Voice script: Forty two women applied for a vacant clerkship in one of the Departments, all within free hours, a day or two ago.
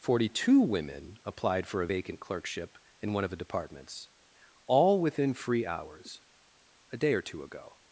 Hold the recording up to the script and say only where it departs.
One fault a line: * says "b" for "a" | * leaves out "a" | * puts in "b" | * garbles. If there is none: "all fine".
all fine